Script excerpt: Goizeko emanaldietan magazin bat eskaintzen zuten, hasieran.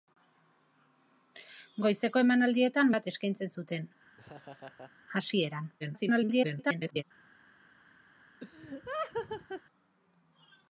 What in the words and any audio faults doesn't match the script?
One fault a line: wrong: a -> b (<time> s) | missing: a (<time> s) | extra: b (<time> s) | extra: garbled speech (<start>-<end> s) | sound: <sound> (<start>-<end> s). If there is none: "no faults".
missing: magazin (2.9 s)
sound: laugh (4.2-4.9 s)
extra: garbled speech (5.8-7.0 s)
sound: laugh (8.4-9.6 s)